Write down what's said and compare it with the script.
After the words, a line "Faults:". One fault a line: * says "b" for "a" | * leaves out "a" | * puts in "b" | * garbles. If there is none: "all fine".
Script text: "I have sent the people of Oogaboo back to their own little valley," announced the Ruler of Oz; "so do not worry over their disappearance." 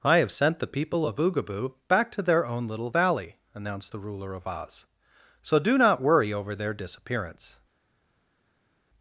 "I have sent the people of Oogaboo back to their own little valley," announced the Ruler of Oz; "so do not worry over their disappearance."
Faults:
all fine